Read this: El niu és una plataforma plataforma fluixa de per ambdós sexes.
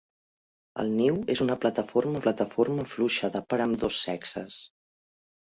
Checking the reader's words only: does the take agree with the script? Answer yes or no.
yes